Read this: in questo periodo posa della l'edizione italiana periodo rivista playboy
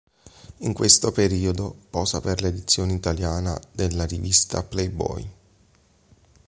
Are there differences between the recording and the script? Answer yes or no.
yes